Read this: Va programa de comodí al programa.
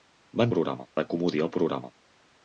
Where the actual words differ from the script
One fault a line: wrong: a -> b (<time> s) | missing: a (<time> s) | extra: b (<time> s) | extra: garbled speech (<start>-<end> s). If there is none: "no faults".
no faults